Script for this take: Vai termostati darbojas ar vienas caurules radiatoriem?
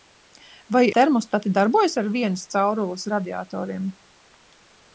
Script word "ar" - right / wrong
right